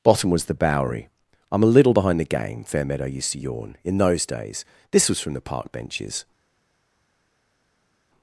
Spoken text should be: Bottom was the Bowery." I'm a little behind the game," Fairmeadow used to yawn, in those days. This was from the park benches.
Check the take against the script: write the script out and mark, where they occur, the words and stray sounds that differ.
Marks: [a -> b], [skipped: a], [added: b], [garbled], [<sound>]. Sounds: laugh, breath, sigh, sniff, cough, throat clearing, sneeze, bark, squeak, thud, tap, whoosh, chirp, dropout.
Bottom was the Bowery." I'm a little behind the game," Fairmeadow used to yawn, in those days. This was from the park benches.